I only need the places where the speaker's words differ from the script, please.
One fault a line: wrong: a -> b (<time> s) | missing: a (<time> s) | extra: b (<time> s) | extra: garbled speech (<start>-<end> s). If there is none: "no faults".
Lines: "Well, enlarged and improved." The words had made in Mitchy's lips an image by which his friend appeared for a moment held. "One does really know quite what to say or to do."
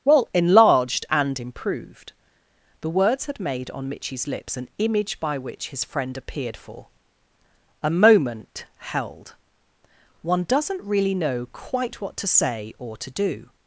wrong: in -> on (3.7 s)
wrong: does -> doesn't (10.4 s)